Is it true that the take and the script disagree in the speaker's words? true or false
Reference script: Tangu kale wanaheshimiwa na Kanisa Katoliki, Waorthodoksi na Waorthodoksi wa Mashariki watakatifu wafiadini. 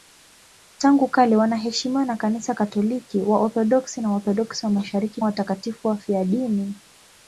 false